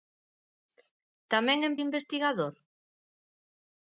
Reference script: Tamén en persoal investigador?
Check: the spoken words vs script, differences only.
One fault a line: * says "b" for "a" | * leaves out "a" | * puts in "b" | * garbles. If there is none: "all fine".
* leaves out "persoal"